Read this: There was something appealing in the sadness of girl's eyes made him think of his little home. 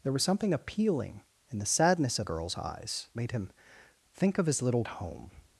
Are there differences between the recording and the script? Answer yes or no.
no